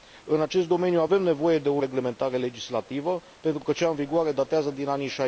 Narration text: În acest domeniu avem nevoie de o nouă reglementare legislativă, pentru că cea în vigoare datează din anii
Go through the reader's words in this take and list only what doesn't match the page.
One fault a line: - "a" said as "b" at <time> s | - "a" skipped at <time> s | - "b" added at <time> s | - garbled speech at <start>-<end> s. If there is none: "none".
- "nouă" skipped at 1.8 s